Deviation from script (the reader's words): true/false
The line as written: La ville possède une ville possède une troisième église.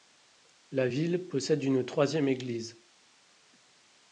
true